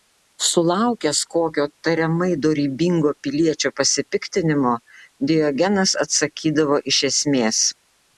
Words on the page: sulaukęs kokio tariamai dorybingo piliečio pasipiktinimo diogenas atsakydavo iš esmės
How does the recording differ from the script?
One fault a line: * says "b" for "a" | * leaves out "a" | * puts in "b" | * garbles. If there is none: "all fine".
all fine